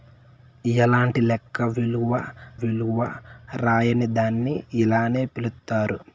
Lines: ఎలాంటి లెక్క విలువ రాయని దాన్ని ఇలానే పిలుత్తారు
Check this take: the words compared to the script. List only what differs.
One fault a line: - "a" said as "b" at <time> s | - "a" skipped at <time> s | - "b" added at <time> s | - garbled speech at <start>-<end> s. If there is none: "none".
- "విలువ" added at 2.6 s